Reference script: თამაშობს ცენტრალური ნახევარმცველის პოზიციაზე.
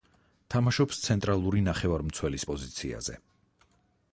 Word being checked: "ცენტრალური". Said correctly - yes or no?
yes